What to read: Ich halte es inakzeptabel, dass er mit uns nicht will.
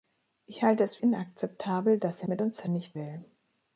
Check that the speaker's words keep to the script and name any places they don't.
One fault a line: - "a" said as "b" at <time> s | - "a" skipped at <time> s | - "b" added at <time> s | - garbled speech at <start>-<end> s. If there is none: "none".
none